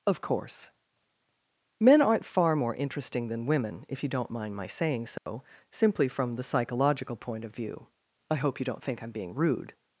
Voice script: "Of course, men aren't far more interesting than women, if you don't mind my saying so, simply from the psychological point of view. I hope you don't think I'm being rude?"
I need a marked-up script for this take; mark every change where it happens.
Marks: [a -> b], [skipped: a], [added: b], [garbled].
"Of course, men aren't far more interesting than women, if you don't mind my saying so, simply from the psychological point of view. I hope you don't think I'm being rude?"